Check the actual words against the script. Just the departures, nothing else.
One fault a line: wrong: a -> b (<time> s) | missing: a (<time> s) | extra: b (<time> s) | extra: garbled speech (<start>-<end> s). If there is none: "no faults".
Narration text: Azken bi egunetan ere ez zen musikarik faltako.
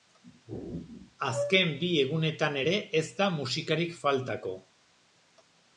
wrong: zen -> da (3.2 s)